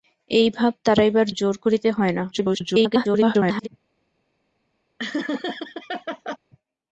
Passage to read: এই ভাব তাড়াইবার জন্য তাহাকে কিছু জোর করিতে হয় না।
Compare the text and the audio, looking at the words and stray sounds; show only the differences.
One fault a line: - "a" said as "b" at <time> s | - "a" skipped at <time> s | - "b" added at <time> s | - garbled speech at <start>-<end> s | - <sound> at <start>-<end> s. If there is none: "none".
- "জন্য তাহাকে কিছু" skipped at 1.3 s
- garbled speech at 2.3-3.7 s
- laugh at 5.0-6.4 s